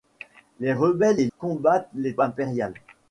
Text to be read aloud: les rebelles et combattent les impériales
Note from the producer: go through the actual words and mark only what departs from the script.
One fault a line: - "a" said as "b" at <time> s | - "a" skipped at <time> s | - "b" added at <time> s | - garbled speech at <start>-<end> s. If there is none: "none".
none